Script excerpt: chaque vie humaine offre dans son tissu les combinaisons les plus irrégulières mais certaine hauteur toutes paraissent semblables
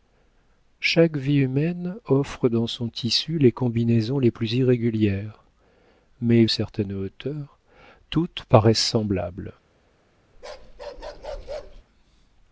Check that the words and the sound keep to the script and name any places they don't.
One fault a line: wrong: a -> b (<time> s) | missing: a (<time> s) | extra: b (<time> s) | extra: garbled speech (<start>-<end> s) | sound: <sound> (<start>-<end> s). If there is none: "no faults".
sound: bark (10.3-11.8 s)